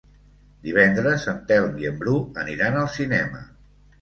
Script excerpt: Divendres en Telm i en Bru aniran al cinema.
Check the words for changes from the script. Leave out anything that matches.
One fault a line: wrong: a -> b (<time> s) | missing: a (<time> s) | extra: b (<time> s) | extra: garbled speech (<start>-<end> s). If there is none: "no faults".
no faults